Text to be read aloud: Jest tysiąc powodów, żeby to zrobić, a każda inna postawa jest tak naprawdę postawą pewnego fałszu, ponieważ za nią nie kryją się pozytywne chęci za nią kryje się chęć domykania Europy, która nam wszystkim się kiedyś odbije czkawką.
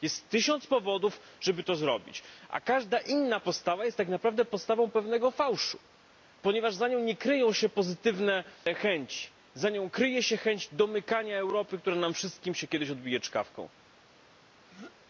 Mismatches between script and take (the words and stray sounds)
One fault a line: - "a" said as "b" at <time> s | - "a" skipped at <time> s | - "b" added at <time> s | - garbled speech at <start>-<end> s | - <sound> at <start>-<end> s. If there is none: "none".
- throat clearing at 14.5-15.0 s